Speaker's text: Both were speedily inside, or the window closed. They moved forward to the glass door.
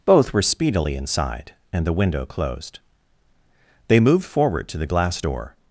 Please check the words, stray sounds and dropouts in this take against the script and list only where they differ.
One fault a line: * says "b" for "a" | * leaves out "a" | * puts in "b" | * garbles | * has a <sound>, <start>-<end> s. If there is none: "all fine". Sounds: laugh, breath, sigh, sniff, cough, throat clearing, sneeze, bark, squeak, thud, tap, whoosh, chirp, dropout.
* says "and" for "or"